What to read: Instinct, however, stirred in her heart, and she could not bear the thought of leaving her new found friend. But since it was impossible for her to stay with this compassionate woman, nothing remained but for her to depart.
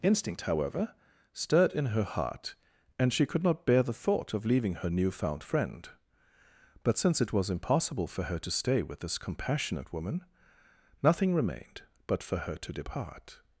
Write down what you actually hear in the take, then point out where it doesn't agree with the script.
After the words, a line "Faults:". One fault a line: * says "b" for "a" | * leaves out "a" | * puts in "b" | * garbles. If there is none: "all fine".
Instinct, however, stirred in her heart, and she could not bear the thought of leaving her new found friend. But since it was impossible for her to stay with this compassionate woman, nothing remained but for her to depart.
Faults:
all fine